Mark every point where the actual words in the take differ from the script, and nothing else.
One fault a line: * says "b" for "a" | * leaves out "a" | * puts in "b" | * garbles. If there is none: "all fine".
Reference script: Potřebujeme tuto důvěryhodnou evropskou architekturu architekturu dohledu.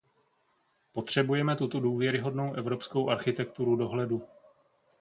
* leaves out "architekturu"